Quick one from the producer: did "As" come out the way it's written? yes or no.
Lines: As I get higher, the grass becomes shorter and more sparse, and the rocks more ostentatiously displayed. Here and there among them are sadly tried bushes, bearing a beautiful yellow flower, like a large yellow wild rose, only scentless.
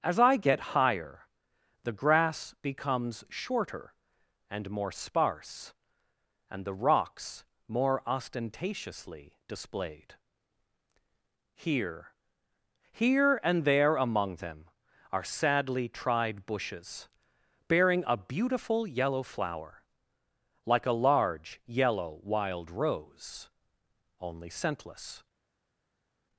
yes